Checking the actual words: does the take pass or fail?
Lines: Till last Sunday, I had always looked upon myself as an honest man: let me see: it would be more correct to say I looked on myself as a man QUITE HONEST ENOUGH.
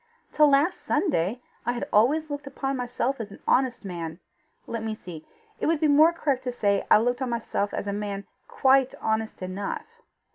pass